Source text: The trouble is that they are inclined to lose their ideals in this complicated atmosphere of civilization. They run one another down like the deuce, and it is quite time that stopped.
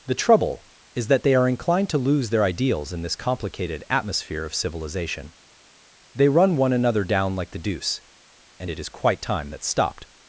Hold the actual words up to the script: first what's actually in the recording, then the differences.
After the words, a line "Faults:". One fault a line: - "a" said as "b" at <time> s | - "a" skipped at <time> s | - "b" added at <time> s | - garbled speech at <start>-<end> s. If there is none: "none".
The trouble is that they are inclined to lose their ideals in this complicated atmosphere of civilization. They run one another down like the deuce, and it is quite time that stopped.
Faults:
none